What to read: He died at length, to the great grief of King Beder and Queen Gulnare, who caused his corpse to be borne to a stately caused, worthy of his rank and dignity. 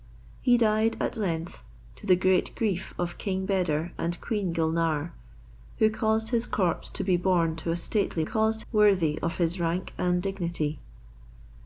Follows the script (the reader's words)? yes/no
yes